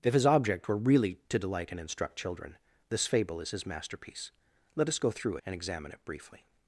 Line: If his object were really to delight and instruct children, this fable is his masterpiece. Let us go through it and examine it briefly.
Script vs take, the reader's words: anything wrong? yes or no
yes